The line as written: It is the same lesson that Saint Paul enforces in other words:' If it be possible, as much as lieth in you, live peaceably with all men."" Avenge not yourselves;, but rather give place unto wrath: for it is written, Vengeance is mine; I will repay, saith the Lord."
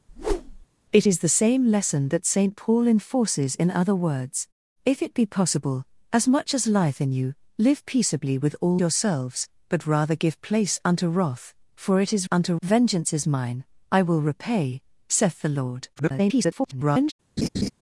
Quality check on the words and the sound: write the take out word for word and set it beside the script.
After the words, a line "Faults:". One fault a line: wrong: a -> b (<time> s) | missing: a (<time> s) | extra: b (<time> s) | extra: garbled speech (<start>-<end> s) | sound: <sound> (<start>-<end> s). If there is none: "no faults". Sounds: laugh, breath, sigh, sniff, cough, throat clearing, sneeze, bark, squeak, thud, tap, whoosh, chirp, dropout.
It is the same lesson that Saint Paul enforces in other words:' If it be possible, as much as lieth in you, live peaceably with all yourselves;, but rather give place unto wrath: for it is unto, Vengeance is mine; I will repay, saith the Lord." [garbled]
Faults:
sound: whoosh (0.1-0.7 s)
missing: men Avenge not (8.8 s)
wrong: written -> unto (12.3 s)
extra: garbled speech (16.0-17.1 s)
sound: laugh (17.4-17.7 s)